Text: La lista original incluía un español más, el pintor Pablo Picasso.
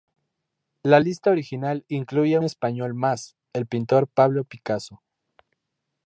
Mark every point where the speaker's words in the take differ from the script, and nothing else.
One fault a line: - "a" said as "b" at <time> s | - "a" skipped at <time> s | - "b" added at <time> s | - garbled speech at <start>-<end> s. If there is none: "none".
- "un" skipped at 2.4 s